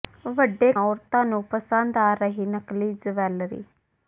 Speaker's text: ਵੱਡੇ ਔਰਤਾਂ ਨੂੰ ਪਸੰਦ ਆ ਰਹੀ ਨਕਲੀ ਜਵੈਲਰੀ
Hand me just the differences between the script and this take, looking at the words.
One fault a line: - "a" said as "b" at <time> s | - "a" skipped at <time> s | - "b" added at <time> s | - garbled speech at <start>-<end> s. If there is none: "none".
none